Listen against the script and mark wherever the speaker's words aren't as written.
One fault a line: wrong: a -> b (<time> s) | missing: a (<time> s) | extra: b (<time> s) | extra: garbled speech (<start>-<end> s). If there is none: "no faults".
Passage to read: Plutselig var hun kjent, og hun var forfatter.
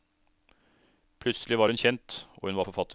no faults